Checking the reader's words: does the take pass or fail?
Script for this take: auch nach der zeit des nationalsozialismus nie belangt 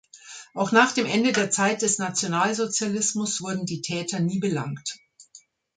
fail